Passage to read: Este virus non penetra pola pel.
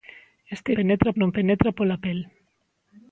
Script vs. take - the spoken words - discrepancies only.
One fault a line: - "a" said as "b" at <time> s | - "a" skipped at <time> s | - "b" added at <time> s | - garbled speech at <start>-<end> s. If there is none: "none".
- "virus" said as "penetra" at 0.8 s